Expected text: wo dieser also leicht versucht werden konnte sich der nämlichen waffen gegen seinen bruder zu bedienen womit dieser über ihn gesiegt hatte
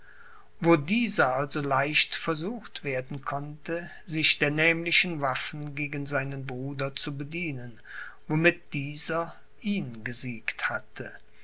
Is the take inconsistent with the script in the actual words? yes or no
yes